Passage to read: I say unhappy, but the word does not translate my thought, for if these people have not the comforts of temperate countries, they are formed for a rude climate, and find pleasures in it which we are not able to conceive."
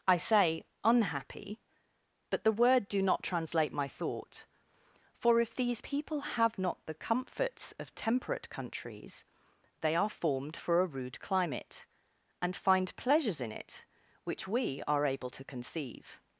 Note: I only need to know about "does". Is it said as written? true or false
false